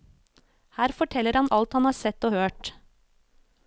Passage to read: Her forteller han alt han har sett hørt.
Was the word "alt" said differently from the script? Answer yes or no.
no